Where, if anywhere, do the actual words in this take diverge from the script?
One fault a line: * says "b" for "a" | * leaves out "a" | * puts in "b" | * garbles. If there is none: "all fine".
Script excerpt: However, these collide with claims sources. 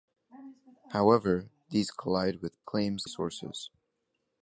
all fine